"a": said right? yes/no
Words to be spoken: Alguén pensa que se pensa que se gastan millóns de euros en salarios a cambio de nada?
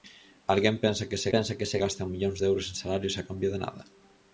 yes